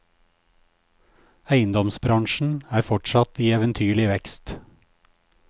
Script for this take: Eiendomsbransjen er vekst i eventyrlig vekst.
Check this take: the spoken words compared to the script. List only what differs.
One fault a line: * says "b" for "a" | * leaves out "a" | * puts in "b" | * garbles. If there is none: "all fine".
* says "fortsatt" for "vekst"